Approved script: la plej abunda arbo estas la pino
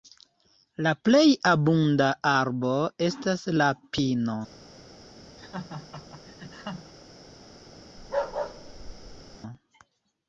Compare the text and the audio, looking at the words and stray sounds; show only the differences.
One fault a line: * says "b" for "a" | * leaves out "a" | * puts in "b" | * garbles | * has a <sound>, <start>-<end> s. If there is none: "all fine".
* has a laugh, 5.4-6.9 s
* has a bark, 8.0-9.4 s